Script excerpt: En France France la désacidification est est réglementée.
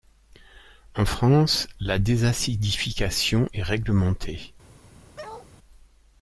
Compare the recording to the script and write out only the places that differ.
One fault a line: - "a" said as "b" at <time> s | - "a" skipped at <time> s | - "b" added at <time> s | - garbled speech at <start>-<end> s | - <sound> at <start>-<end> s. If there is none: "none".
- "France" skipped at 1.7 s
- "est" skipped at 3.6 s
- bark at 5.2-5.5 s